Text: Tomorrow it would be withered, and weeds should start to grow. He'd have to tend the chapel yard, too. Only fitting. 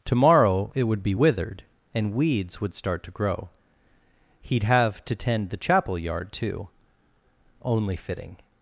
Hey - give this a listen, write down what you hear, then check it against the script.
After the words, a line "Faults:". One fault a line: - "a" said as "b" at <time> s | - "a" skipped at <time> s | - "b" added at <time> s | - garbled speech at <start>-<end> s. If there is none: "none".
Tomorrow it would be withered, and weeds would start to grow. He'd have to tend the chapel yard, too. Only fitting.
Faults:
- "should" said as "would" at 2.6 s